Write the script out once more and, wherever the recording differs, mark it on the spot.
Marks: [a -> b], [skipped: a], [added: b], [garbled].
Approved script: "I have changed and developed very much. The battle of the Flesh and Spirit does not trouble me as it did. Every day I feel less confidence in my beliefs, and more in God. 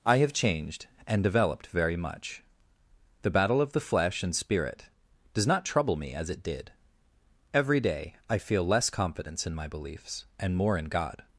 "I have changed and developed very much. The battle of the Flesh and Spirit does not trouble me as it did. Every day I feel less confidence in my beliefs, and more in God.